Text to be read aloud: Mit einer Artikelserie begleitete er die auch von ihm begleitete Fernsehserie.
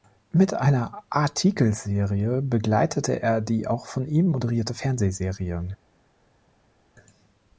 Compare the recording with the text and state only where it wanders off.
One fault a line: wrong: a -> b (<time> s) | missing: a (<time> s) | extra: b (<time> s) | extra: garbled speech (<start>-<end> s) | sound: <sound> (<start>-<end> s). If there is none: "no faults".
wrong: begleitete -> moderierte (4.3 s)